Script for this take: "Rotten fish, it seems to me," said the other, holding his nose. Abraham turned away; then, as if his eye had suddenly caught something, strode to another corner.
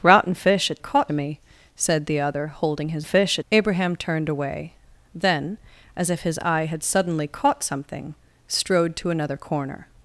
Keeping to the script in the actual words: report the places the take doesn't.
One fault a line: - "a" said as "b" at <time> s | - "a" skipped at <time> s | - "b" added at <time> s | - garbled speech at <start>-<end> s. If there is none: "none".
- "seems" said as "caught" at 0.8 s
- "nose" said as "fish" at 3.0 s